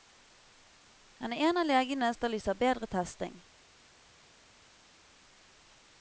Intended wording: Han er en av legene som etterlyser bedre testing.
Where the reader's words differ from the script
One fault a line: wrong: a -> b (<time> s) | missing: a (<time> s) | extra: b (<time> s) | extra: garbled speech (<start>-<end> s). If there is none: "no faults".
missing: som (2.1 s)